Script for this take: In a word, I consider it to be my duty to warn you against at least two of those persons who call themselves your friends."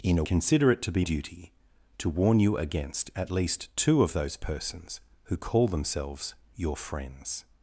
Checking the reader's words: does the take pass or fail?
fail